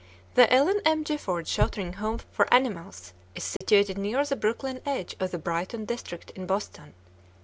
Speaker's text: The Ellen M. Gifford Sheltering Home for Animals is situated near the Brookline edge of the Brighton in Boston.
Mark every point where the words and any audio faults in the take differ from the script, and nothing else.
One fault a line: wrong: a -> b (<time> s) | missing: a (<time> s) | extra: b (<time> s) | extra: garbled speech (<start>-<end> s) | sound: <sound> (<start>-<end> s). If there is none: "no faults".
sound: dropout (3.6-3.6 s)
extra: district (5.8 s)